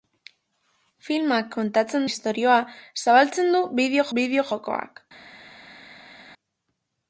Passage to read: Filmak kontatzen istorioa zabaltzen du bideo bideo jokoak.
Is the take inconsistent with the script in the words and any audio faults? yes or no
no